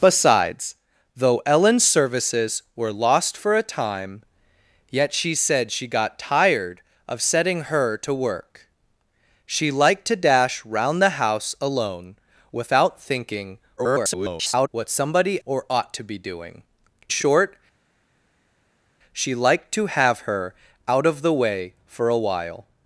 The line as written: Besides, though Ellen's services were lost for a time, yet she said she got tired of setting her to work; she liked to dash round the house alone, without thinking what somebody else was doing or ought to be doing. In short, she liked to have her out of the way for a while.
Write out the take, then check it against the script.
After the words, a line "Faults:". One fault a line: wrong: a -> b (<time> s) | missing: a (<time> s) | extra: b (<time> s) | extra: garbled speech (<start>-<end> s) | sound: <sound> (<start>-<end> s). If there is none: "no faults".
Besides, though Ellen's services were lost for a time, yet she said she got tired of setting her to work; she liked to dash round the house alone, without thinking [garbled] what somebody or ought to be doing. Short, she liked to have her out of the way for a while.
Faults:
extra: garbled speech (13.8-14.7 s)
missing: else was doing (15.4 s)
missing: In (16.6 s)